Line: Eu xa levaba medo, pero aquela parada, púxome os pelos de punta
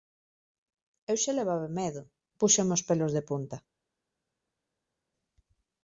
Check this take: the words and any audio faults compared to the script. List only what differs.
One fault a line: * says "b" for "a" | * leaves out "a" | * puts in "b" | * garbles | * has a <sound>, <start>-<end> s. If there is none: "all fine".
* leaves out "pero aquela parada"